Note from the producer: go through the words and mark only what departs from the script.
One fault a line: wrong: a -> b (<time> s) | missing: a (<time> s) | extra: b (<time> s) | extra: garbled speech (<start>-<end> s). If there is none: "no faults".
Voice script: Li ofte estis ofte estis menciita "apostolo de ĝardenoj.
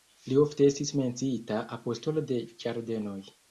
missing: ofte estis (0.9 s)